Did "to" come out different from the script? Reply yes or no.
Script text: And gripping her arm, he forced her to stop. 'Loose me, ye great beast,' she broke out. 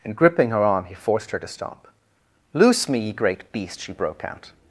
no